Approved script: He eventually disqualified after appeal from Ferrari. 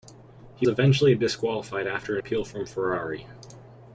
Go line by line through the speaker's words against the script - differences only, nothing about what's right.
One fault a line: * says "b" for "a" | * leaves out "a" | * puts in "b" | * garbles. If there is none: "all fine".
all fine